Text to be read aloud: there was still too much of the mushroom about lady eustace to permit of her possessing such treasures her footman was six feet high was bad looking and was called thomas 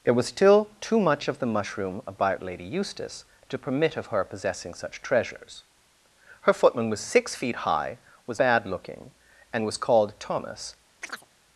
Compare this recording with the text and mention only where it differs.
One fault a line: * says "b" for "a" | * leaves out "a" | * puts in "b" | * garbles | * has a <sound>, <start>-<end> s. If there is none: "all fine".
* has a chirp, 11.0-11.3 s